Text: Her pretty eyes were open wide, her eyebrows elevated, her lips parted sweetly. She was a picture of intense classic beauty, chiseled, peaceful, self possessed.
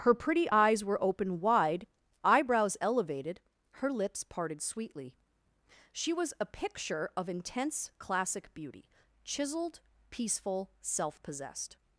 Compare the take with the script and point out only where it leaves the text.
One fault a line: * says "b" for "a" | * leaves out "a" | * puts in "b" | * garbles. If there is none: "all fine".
* leaves out "her"